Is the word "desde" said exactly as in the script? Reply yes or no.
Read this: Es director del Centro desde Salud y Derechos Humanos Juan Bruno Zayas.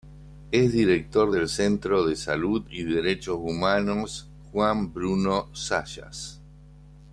no